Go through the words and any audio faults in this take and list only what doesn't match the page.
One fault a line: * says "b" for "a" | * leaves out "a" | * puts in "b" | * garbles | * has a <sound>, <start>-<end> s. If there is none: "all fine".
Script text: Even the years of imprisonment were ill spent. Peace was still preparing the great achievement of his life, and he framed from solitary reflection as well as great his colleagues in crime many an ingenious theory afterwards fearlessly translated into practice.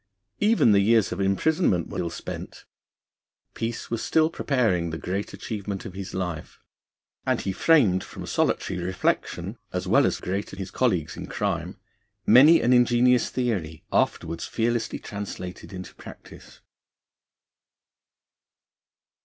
all fine